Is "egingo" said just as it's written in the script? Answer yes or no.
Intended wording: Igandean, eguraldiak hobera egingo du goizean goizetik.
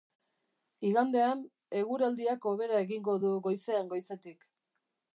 yes